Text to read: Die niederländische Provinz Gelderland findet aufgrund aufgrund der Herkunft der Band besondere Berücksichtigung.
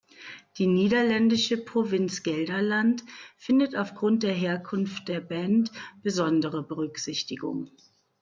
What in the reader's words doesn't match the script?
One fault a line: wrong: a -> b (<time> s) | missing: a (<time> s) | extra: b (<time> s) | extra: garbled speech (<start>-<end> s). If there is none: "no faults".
missing: aufgrund (4.2 s)